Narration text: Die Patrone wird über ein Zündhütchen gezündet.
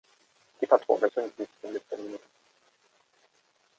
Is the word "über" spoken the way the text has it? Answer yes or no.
no